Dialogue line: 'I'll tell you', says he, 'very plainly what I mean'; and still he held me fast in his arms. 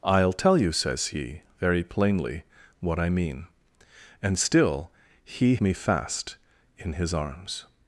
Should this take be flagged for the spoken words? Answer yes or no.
yes